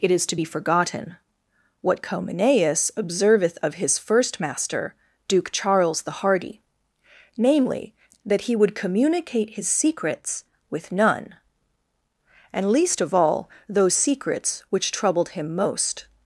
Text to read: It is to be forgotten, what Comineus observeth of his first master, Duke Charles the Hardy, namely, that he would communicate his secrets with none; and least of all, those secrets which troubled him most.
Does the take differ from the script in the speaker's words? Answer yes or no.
no